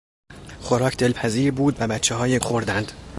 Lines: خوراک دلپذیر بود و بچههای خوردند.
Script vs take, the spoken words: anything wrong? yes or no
no